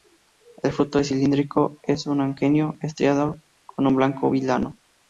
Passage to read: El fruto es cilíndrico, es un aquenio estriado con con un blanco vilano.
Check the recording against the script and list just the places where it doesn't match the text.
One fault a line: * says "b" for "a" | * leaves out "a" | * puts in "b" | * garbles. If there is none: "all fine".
* leaves out "con"